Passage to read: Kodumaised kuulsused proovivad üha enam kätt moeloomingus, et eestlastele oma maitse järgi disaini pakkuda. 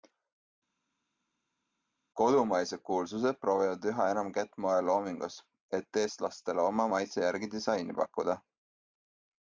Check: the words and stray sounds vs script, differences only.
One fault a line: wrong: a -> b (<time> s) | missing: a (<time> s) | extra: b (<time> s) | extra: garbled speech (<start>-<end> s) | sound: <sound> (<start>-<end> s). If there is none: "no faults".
no faults